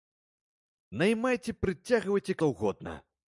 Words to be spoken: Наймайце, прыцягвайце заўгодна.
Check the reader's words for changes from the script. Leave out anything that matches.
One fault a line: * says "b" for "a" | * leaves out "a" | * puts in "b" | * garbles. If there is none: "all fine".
all fine